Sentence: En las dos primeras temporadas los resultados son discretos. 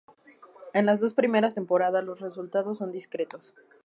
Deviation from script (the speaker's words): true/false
false